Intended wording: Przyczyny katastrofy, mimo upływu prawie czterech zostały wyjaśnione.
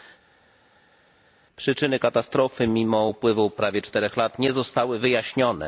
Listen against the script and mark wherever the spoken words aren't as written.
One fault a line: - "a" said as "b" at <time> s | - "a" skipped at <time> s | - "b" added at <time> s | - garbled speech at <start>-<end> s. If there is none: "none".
- "lat nie" added at 4.2 s